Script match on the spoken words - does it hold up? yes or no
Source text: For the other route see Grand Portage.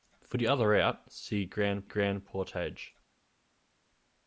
no